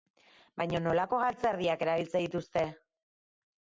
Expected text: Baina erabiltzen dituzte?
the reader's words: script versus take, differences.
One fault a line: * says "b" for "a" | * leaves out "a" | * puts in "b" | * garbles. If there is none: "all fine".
* puts in "nolako galtzerdiak"